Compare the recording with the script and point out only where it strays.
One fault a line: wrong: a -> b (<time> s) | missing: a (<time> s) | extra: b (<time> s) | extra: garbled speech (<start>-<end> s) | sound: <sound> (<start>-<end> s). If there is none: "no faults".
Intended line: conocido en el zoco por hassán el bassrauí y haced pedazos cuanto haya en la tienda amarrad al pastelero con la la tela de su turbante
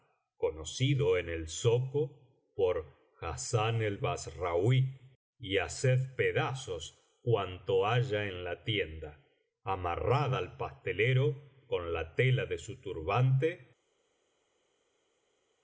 missing: la (12.1 s)